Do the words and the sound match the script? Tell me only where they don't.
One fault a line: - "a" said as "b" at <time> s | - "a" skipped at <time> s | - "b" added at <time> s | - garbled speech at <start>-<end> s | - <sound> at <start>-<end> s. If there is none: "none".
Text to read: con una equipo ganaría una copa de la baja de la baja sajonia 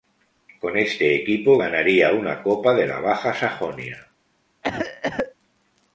- "una" said as "este" at 0.8 s
- "de la baja" skipped at 3.3 s
- cough at 4.6-5.3 s